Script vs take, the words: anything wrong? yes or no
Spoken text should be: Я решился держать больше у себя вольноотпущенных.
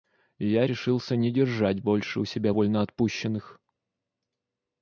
yes